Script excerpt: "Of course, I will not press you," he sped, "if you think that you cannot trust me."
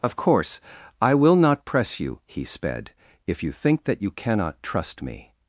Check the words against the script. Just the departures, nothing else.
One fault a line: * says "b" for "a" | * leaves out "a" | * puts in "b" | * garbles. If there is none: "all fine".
all fine